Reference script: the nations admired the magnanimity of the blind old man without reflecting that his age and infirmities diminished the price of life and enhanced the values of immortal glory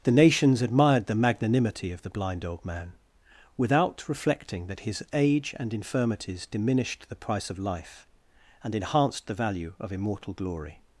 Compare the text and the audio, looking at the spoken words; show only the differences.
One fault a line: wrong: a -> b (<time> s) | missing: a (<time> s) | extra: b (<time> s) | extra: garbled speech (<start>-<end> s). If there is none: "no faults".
wrong: values -> value (9.4 s)